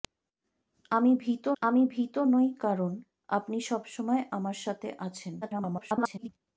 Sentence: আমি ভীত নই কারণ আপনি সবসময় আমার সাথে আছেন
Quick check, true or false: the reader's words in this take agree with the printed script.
false